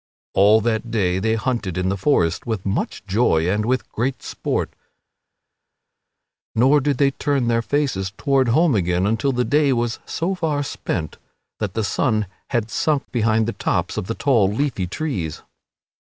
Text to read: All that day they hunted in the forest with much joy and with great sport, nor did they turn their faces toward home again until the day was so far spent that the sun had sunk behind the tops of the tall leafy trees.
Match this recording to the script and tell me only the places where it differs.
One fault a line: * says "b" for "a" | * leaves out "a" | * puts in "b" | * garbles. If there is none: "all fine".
all fine